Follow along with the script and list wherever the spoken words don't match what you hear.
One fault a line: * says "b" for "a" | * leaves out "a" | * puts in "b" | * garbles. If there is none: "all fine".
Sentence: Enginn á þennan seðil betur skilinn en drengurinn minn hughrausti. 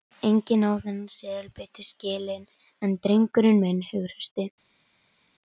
all fine